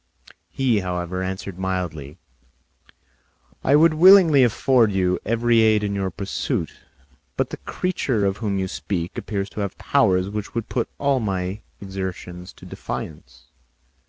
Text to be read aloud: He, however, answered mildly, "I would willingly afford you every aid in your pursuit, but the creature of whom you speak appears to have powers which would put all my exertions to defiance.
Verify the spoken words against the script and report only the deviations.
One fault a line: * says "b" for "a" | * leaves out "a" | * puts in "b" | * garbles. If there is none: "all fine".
all fine